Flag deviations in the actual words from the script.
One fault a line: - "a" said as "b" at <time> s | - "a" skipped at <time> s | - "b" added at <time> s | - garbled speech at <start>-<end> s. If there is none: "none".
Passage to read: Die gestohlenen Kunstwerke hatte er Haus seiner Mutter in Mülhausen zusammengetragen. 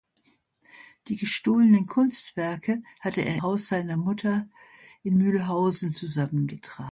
none